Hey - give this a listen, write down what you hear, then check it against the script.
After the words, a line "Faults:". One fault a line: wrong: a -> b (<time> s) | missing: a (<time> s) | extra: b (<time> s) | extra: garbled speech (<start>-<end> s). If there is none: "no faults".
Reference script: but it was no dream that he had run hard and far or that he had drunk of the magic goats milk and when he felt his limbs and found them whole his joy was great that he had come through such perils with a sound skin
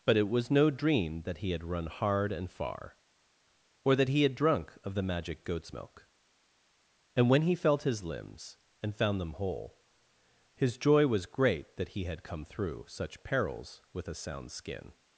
but it was no dream that he had run hard and far or that he had drunk of the magic goats milk and when he felt his limbs and found them whole his joy was great that he had come through such perils with a sound skin
Faults:
no faults